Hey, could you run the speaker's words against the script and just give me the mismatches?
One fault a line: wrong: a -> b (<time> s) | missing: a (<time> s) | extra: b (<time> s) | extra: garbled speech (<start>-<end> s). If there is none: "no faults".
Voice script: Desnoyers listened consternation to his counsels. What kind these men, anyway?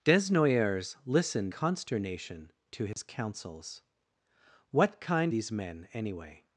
no faults